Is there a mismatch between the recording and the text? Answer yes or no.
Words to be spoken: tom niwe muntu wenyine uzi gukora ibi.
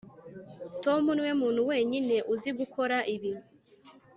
no